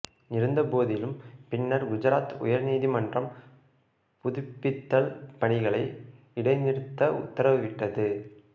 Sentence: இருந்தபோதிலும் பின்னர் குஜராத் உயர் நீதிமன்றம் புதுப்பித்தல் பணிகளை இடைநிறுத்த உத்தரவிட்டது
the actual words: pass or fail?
pass